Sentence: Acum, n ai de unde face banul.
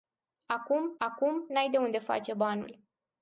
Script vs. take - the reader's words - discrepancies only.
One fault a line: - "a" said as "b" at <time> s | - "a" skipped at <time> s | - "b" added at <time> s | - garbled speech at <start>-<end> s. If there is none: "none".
- "acum" added at 1.1 s